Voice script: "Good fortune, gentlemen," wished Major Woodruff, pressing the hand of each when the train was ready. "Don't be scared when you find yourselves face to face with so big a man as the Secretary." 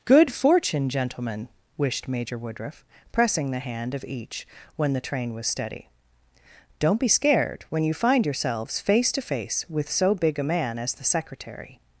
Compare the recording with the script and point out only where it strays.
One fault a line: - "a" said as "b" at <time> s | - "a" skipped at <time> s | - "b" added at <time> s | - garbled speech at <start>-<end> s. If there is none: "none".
- "ready" said as "steady" at 5.5 s